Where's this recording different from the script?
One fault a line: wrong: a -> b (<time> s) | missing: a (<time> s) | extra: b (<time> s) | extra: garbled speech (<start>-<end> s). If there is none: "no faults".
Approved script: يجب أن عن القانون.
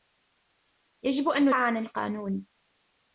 no faults